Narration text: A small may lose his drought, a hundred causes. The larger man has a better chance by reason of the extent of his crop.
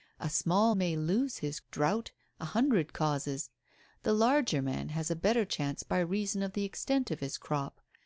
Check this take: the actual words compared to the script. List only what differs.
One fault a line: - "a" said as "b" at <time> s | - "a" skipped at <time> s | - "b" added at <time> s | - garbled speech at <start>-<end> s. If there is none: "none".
none